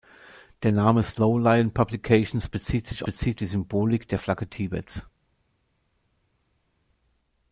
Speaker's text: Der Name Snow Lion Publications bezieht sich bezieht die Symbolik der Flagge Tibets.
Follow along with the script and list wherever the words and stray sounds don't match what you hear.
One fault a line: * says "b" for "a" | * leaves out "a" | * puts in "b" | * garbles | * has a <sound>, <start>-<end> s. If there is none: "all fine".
all fine